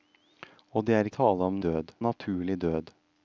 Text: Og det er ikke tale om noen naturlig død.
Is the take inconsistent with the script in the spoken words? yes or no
yes